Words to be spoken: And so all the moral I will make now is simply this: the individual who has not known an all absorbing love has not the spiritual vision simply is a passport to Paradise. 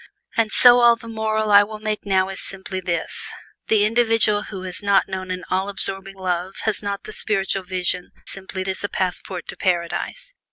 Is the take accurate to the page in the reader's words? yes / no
yes